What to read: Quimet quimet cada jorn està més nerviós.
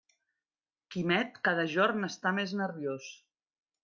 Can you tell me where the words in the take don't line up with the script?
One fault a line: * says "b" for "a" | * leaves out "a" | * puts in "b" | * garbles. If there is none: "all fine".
* leaves out "quimet"